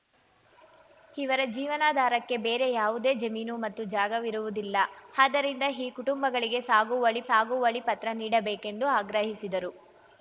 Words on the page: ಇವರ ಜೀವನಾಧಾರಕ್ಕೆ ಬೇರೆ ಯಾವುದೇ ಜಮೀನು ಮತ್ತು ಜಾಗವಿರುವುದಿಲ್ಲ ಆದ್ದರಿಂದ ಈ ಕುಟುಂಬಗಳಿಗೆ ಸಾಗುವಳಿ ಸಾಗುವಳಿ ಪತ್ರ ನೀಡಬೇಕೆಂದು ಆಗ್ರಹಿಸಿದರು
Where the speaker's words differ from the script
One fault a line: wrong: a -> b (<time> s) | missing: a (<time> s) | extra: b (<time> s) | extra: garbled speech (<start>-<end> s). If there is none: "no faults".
no faults